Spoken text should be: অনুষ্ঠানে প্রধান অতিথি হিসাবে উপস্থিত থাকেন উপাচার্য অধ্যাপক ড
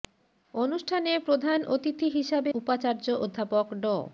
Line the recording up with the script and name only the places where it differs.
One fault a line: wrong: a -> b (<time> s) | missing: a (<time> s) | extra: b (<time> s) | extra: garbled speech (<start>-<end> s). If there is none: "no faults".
missing: উপস্থিত থাকেন (2.5 s)